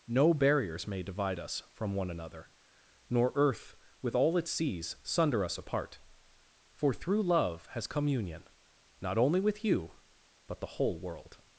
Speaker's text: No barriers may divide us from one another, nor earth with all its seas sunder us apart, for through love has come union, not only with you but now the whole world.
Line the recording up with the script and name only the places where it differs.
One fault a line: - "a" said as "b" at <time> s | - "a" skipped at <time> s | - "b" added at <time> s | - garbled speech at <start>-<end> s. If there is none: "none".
- "now" skipped at 10.6 s